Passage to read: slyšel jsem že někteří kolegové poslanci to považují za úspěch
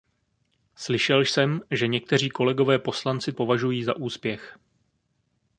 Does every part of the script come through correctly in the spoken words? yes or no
no